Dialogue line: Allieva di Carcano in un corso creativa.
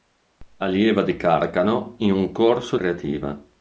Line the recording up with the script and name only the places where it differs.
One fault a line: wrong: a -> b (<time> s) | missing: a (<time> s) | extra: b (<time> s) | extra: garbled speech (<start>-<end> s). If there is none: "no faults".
no faults